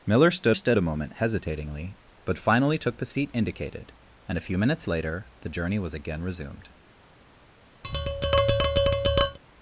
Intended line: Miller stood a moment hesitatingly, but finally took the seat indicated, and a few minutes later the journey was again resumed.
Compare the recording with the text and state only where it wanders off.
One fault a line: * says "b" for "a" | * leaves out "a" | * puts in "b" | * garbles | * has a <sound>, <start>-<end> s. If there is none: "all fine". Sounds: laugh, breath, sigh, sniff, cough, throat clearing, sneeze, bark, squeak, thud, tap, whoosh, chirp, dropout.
* puts in "stood"
* has a tap, 7.8-9.4 s